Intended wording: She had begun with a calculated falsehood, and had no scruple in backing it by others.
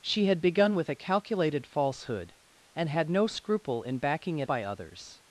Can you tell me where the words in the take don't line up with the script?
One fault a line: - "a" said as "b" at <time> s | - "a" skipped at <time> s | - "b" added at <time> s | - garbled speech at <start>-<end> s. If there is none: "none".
none